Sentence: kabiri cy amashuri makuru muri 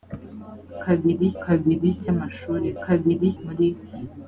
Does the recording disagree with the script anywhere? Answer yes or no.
yes